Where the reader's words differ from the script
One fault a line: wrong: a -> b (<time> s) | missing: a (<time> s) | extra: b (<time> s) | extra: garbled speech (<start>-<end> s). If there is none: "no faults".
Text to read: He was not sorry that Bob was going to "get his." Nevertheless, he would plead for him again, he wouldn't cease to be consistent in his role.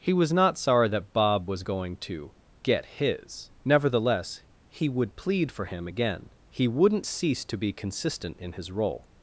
no faults